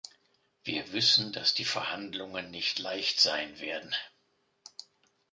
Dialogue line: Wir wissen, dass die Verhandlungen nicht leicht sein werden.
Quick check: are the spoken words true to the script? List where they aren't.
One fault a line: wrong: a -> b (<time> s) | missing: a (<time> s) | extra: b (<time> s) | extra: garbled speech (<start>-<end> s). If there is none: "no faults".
no faults